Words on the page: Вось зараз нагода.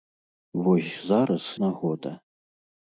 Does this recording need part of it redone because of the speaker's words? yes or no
no